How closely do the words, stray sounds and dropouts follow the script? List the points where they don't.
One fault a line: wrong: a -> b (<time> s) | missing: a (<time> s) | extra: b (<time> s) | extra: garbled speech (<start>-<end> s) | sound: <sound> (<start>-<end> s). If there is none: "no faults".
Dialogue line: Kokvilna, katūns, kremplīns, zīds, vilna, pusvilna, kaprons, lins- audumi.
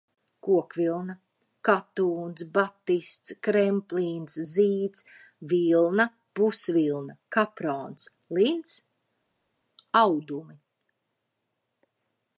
extra: batists (2.5 s)